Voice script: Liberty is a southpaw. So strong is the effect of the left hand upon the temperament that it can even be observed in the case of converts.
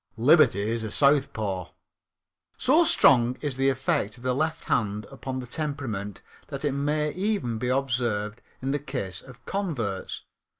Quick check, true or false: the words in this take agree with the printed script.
false